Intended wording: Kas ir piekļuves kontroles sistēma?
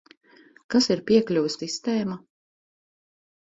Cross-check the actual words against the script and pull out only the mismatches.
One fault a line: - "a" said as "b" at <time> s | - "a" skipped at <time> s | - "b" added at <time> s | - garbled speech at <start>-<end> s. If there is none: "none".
- "kontroles" skipped at 1.6 s